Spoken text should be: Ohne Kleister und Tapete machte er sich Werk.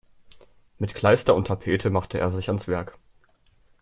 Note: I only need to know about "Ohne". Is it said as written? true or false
false